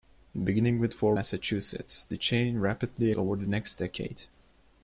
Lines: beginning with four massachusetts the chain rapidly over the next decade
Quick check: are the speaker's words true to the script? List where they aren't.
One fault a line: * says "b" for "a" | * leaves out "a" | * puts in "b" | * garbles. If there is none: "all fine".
all fine